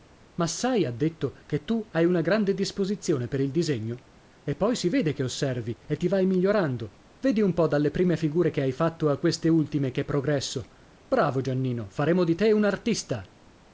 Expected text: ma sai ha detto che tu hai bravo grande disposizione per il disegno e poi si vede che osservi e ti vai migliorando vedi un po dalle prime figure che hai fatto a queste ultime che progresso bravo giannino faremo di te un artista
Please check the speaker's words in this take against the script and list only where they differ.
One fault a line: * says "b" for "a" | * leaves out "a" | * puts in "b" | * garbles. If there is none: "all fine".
* says "una" for "bravo"